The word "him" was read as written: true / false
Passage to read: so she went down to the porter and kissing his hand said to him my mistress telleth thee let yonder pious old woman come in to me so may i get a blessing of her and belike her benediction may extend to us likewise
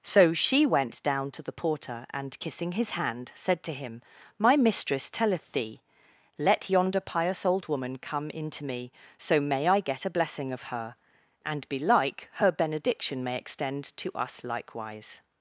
true